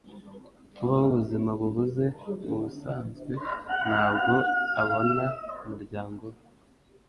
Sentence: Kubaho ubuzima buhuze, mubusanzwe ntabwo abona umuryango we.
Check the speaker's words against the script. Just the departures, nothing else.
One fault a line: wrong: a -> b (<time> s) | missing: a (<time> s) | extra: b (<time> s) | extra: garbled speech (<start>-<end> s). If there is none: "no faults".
no faults